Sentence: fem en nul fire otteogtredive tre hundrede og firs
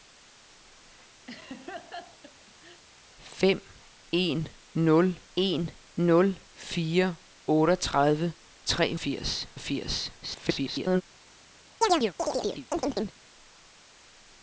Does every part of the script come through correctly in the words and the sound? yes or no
no